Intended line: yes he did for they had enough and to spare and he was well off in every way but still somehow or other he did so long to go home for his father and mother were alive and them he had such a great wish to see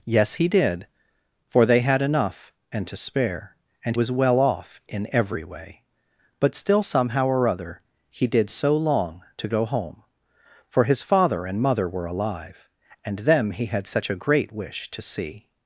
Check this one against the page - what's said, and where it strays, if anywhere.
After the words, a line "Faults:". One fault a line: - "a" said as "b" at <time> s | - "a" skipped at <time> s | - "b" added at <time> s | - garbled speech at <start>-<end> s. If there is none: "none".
yes he did for they had enough and to spare and was well off in every way but still somehow or other he did so long to go home for his father and mother were alive and them he had such a great wish to see
Faults:
- "he" skipped at 4.0 s